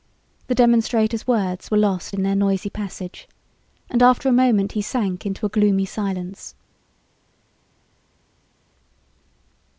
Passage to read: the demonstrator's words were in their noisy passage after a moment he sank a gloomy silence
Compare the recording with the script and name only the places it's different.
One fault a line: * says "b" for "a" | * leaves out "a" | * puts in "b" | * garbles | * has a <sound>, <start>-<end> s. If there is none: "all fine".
* puts in "lost"
* puts in "and"
* puts in "into"